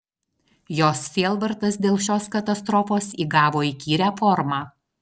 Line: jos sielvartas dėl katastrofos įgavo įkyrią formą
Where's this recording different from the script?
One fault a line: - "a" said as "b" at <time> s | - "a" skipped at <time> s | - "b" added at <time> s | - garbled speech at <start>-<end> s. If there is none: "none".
- "šios" added at 2.0 s